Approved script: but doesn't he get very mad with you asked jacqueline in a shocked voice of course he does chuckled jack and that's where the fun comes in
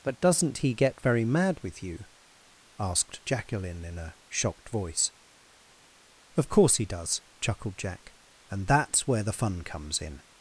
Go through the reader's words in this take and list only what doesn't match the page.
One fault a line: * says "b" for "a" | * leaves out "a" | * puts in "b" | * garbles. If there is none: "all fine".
all fine